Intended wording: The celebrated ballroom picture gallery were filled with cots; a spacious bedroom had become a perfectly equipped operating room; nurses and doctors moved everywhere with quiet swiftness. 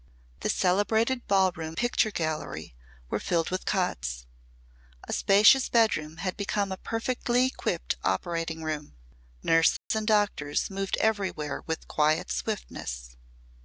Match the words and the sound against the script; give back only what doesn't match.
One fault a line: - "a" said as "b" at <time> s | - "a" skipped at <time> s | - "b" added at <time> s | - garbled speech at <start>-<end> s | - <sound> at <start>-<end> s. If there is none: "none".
- dropout at 9.8-9.9 s